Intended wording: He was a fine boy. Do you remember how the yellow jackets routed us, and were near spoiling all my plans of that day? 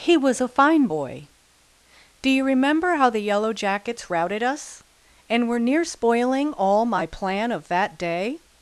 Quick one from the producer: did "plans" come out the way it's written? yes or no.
no